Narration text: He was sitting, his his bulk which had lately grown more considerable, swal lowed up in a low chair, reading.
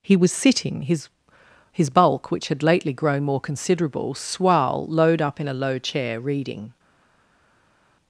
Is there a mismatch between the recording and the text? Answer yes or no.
no